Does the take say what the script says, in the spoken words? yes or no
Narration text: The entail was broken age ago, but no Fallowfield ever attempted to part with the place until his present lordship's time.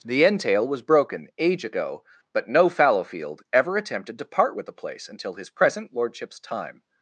yes